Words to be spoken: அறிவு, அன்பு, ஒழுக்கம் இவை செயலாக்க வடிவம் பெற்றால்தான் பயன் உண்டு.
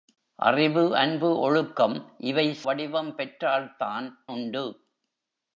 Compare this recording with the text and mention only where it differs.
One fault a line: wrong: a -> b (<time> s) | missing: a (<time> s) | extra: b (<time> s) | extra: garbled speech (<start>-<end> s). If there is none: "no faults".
missing: செயலாக்க (2.6 s)
missing: பயன் (4.2 s)